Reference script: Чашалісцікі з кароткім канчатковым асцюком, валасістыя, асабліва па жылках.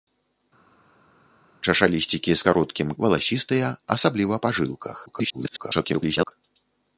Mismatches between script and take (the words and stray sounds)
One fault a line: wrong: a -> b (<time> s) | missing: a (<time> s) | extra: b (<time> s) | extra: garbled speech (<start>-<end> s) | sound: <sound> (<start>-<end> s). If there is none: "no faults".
missing: канчатковым асцюком (2.9 s)
extra: garbled speech (5.1-6.3 s)